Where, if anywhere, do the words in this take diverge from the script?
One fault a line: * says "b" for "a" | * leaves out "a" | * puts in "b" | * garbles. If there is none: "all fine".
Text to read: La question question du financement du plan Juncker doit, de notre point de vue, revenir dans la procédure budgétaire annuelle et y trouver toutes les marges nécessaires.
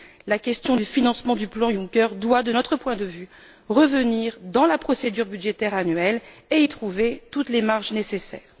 * leaves out "question"